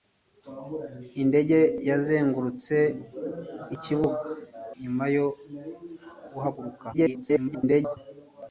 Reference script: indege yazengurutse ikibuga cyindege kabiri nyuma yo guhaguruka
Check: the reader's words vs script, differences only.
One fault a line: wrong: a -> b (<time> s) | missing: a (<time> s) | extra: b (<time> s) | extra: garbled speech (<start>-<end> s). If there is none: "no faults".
missing: cyindege kabiri (4.3 s)
extra: garbled speech (6.9-8.0 s)